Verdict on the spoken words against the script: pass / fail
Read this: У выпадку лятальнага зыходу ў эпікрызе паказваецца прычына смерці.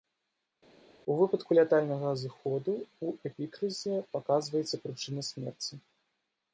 pass